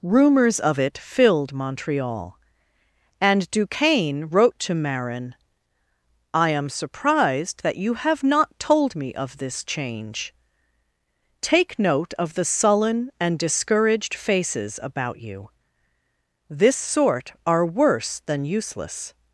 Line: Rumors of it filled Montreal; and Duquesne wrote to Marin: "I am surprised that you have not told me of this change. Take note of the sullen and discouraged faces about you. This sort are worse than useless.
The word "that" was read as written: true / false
true